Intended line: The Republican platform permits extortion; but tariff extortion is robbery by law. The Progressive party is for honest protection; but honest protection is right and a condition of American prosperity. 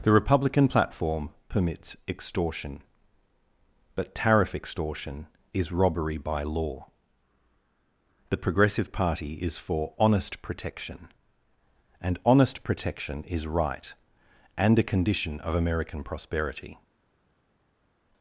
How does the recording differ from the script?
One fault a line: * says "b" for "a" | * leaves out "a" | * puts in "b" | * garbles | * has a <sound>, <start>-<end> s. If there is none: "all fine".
* says "and" for "but"